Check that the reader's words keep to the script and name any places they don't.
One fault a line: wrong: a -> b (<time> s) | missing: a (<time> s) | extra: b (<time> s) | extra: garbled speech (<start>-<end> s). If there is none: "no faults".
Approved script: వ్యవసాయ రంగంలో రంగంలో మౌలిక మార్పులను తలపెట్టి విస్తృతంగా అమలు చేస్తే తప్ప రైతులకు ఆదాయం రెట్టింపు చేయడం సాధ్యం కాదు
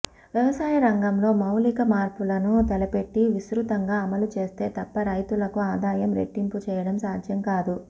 missing: రంగంలో (1.3 s)